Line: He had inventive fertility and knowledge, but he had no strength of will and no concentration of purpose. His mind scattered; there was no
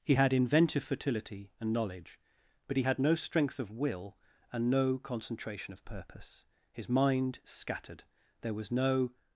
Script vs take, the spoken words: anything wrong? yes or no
no